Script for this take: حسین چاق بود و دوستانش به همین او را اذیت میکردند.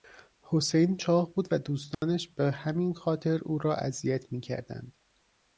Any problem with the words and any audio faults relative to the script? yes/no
yes